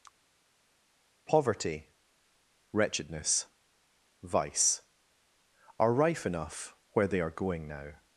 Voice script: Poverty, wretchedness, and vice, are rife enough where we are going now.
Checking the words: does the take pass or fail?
fail